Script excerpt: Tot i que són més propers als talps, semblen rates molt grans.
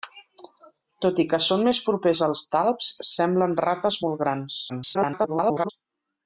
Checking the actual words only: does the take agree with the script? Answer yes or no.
no